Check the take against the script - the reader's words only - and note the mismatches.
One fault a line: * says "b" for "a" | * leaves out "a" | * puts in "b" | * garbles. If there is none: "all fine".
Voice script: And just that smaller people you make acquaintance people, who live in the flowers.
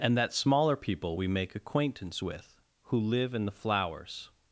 * leaves out "just"
* says "we" for "you"
* says "with" for "people"